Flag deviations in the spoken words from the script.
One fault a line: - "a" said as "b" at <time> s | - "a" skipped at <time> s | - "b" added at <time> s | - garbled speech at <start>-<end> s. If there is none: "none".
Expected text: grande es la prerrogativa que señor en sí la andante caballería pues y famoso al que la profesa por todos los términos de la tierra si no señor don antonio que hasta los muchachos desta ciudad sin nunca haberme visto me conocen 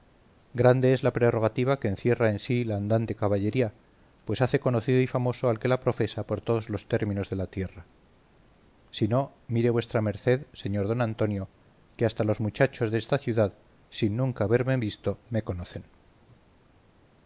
- "señor" said as "encierra" at 1.9 s
- "hace conocido" added at 4.4 s
- "mire vuestra merced" added at 9.4 s